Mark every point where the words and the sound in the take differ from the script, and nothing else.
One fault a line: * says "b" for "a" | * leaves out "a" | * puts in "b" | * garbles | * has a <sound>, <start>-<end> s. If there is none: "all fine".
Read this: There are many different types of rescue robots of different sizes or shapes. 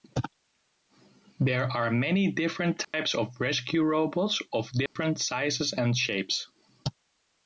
* has a dropout, 2.8-2.9 s
* has a dropout, 4.9-5.0 s
* says "and" for "or"